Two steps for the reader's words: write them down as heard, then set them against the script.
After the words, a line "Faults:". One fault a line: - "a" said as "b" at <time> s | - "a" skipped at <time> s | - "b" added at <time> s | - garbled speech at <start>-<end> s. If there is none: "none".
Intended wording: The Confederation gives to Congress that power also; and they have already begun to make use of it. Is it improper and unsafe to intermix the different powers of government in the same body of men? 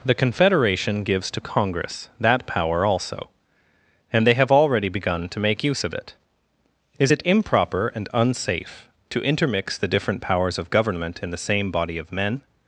The Confederation gives to Congress that power also; and they have already begun to make use of it. Is it improper and unsafe to intermix the different powers of government in the same body of men?
Faults:
none